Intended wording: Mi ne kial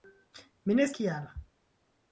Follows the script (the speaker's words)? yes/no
yes